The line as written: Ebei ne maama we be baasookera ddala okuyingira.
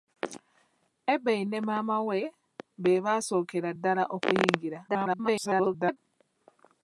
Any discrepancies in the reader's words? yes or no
yes